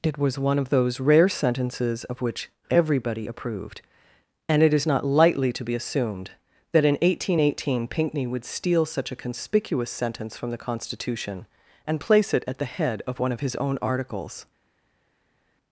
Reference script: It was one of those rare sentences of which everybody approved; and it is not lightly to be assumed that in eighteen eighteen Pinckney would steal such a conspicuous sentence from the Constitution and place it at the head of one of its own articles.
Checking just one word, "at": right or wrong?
right